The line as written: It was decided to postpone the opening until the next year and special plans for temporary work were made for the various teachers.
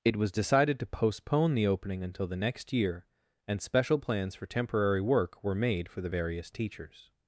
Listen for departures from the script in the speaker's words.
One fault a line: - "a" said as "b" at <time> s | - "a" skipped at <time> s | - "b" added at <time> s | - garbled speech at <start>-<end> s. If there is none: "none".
none